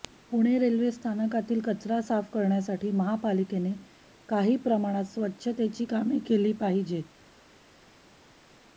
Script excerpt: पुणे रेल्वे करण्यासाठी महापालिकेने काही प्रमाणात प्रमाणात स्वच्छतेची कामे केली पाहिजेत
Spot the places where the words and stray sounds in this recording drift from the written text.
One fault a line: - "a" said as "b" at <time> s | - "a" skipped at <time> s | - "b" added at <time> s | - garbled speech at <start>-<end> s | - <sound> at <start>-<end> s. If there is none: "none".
- "स्थानकातील कचरा साफ" added at 0.9 s
- "प्रमाणात" skipped at 5.0 s